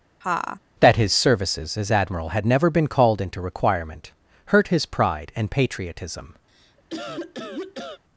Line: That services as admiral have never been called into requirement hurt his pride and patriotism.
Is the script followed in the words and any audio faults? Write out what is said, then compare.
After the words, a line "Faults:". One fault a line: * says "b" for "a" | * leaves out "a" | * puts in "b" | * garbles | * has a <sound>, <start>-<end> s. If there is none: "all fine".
That his services as admiral had never been called into requirement hurt his pride and patriotism.
Faults:
* has a laugh, 0.2-0.6 s
* puts in "his"
* says "had" for "have"
* has a cough, 6.5-8.0 s